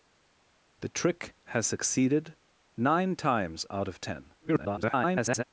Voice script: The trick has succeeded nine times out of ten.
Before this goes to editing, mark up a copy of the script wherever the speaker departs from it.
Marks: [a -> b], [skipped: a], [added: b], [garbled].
The trick has succeeded nine times out of ten. [garbled]